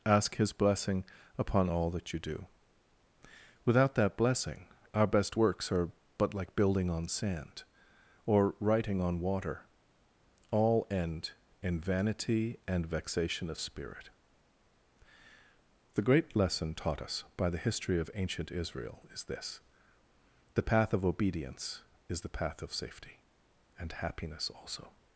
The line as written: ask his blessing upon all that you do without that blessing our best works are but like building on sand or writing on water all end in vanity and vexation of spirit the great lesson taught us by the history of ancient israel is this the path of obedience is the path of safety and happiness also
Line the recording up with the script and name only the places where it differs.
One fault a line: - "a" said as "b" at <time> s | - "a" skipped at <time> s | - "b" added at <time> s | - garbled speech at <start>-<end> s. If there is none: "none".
none